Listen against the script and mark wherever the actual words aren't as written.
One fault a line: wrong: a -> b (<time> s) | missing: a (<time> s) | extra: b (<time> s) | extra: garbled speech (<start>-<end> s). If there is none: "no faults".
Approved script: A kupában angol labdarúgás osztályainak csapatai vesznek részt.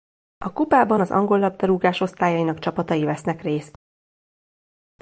extra: az (1.0 s)